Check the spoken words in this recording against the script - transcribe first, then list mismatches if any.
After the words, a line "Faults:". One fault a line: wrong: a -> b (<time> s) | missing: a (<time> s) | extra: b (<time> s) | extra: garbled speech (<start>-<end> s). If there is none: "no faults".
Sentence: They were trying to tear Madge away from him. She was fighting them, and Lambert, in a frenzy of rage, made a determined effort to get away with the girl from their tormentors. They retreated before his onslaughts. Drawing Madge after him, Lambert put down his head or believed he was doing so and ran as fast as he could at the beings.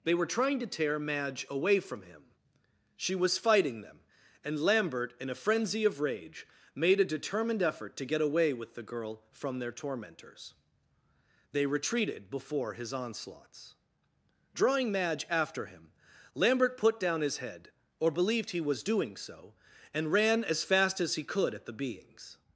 They were trying to tear Madge away from him. She was fighting them, and Lambert, in a frenzy of rage, made a determined effort to get away with the girl from their tormentors. They retreated before his onslaughts. Drawing Madge after him, Lambert put down his head or believed he was doing so and ran as fast as he could at the beings.
Faults:
no faults